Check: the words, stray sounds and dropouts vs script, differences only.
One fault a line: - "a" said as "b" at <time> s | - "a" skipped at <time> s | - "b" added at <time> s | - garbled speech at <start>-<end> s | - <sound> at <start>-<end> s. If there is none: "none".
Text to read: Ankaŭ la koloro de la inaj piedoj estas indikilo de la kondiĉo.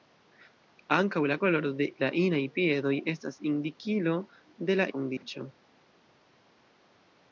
- dropout at 5.2-5.2 s